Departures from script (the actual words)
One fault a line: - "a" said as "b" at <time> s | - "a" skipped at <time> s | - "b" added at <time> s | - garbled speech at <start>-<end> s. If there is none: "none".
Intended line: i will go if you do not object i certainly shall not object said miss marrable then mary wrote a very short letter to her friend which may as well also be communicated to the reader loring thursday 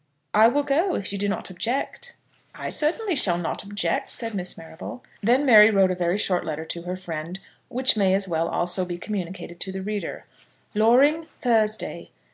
none